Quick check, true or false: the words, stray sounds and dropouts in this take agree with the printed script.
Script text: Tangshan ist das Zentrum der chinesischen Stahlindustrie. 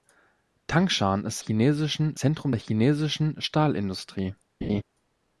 false